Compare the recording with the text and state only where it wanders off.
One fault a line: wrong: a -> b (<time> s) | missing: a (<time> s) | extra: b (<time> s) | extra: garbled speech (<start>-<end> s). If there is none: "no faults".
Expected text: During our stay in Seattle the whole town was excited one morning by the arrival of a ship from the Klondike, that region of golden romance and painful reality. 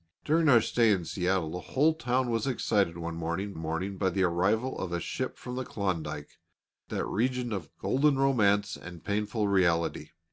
extra: morning (3.6 s)